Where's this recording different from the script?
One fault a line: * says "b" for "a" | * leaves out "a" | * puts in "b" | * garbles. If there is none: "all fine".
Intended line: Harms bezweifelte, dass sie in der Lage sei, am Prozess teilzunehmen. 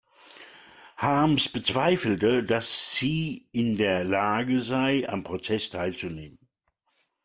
all fine